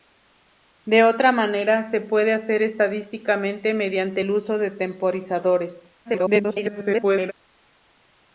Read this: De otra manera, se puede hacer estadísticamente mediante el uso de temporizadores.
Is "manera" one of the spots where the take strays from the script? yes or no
no